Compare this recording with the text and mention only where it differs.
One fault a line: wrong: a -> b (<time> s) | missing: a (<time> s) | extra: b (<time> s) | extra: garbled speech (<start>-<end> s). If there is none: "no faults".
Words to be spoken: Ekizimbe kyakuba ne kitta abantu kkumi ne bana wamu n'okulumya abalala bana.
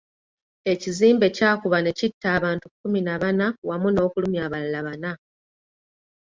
wrong: ne -> na (3.0 s)